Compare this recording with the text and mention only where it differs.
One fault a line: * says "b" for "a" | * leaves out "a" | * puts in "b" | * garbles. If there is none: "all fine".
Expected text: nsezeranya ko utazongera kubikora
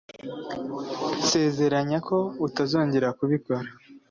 all fine